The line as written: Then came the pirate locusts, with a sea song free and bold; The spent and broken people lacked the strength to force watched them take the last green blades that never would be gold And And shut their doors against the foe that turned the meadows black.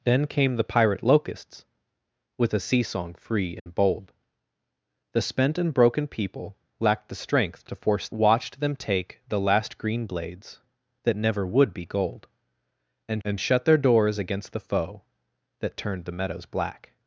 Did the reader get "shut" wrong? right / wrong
right